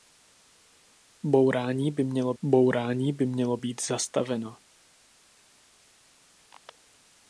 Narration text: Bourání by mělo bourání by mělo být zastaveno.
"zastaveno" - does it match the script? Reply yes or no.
yes